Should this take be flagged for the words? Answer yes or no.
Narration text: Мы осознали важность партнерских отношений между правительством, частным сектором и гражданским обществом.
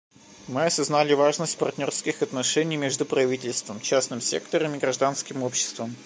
no